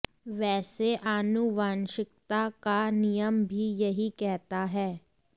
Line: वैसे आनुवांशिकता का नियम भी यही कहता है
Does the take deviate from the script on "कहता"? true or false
false